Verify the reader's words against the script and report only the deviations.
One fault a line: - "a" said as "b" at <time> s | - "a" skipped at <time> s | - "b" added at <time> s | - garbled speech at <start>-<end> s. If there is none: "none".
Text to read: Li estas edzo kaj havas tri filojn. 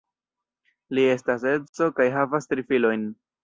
none